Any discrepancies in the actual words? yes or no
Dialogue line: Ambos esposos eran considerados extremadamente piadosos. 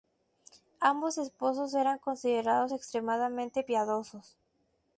no